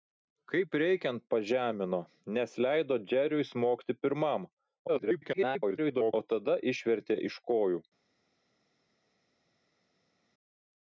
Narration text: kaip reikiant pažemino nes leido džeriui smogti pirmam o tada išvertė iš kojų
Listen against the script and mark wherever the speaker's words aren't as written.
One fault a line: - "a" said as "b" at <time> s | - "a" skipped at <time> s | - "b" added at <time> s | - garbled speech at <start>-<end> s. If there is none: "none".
- garbled speech at 4.9-6.1 s